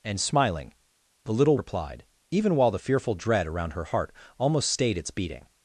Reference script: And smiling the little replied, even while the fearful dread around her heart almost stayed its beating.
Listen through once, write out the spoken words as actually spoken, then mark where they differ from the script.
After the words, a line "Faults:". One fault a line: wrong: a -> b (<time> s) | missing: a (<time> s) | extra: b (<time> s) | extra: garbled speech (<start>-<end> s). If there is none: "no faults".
And smiling the little replied, even while the fearful dread around her heart almost stayed its beating.
Faults:
no faults